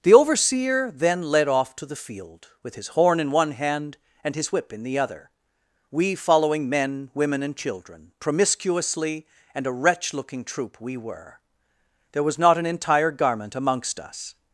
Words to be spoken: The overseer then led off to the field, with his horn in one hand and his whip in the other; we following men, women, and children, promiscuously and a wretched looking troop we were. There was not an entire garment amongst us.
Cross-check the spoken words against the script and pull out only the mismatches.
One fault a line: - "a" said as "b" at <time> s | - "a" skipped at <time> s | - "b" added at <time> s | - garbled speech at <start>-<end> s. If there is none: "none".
- "wretched" said as "wretch" at 9.7 s